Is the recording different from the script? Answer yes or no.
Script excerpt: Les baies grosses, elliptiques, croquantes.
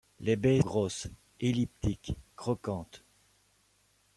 no